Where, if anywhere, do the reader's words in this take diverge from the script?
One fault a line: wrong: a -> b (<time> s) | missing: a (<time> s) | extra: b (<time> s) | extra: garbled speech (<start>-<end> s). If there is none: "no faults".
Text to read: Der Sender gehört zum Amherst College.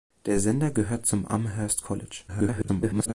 extra: garbled speech (2.3-3.1 s)